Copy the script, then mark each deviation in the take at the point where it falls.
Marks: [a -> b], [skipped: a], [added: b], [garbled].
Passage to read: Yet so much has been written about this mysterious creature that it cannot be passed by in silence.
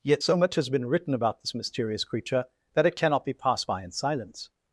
Yet so much has been written about this mysterious creature that it cannot be passed by in silence.